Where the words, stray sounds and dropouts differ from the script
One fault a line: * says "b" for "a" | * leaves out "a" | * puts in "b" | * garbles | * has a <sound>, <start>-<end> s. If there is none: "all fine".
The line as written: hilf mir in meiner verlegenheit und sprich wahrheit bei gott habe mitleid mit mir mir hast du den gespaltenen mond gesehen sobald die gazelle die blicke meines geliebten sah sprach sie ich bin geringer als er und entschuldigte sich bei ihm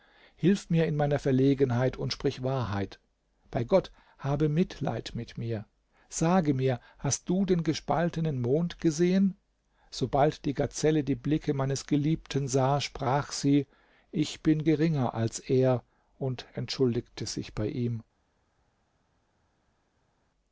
* puts in "sage"